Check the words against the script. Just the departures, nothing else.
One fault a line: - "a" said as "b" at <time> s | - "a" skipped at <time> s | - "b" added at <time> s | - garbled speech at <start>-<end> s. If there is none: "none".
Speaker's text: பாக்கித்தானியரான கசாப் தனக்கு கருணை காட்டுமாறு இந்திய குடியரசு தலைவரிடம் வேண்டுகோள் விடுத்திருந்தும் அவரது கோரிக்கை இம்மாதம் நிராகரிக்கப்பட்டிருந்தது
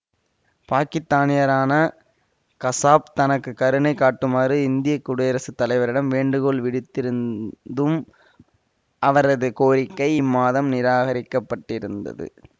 none